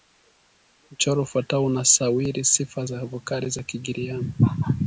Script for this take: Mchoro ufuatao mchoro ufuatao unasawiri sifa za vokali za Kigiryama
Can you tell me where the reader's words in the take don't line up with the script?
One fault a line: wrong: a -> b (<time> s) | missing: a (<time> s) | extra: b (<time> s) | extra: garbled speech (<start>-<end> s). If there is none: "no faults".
missing: mchoro ufuatao (1.6 s)